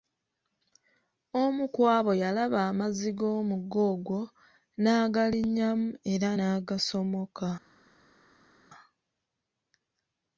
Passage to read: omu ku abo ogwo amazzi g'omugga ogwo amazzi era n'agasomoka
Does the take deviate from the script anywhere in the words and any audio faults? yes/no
yes